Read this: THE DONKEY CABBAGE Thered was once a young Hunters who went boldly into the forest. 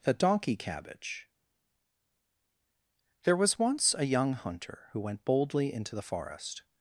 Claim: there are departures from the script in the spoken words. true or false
true